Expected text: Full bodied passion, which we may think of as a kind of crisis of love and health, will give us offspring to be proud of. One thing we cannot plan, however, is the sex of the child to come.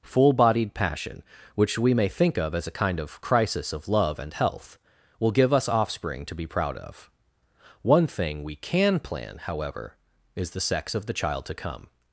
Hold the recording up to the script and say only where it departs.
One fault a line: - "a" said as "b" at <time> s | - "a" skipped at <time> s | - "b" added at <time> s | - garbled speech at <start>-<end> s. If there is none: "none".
- "cannot" said as "can" at 8.5 s